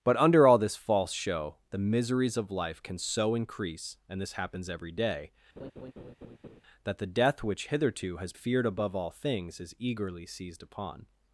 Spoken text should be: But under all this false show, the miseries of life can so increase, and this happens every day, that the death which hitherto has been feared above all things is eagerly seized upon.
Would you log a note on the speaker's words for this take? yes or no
yes